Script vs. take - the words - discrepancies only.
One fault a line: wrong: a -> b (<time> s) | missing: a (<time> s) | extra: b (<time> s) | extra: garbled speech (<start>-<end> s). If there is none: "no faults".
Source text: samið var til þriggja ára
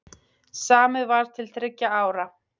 no faults